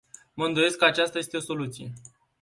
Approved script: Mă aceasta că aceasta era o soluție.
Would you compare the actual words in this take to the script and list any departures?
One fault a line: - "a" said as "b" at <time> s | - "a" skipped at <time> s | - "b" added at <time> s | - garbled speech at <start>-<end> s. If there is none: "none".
- "aceasta" said as "îndoiesc" at 0.5 s
- "era" said as "este" at 1.2 s